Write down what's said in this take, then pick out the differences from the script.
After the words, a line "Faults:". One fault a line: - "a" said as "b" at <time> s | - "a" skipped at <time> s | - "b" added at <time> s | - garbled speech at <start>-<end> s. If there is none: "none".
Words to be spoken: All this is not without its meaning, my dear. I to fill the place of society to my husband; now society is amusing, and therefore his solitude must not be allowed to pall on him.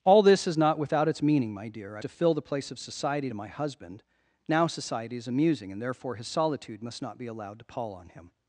All this is not without its meaning, my dear. I to fill the place of society to my husband; now society is amusing, and therefore his solitude must not be allowed to pall on him.
Faults:
none